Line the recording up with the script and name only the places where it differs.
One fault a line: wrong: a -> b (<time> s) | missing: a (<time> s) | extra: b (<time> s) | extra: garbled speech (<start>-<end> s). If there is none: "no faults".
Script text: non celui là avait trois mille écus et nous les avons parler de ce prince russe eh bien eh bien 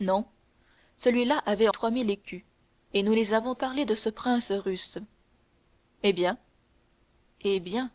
no faults